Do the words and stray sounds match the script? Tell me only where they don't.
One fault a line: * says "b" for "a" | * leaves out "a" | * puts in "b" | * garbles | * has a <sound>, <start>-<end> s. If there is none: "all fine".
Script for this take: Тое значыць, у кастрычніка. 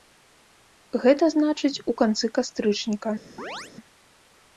* says "Гэта" for "Тое"
* puts in "канцы"
* has a chirp, 3.4-3.7 s